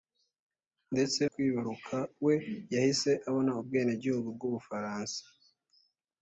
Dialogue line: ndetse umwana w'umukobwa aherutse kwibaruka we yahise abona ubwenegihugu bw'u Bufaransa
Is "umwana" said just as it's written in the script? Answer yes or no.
no